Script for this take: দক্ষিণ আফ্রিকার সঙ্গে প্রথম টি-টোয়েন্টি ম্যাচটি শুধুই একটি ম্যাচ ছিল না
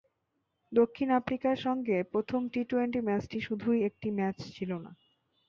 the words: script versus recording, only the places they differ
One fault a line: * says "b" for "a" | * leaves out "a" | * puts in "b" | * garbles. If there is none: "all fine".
all fine